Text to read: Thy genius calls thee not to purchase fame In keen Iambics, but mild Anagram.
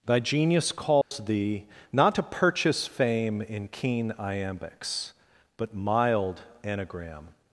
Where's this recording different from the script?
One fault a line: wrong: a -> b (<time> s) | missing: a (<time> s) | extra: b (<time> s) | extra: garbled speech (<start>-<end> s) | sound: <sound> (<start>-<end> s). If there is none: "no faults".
sound: dropout (1.0-1.1 s)